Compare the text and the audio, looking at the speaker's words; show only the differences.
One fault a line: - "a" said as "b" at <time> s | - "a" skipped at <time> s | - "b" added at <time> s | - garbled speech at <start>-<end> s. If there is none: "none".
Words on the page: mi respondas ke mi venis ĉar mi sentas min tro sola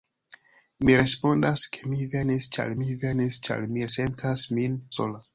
- "venis ĉar mi" added at 3.0 s
- "tro" skipped at 4.8 s